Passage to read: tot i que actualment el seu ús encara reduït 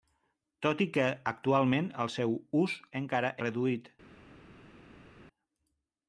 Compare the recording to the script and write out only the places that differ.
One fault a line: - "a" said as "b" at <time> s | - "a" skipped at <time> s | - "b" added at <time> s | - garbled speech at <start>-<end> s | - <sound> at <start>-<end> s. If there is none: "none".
none